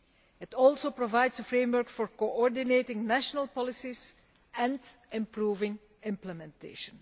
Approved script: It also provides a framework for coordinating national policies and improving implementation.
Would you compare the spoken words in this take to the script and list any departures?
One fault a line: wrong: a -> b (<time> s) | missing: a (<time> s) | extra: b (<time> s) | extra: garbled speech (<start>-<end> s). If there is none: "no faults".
no faults